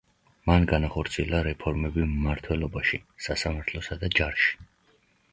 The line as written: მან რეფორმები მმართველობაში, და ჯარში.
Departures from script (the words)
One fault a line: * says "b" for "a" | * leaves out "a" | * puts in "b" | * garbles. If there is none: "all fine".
* puts in "განახორციელა"
* puts in "სასამართლოსა"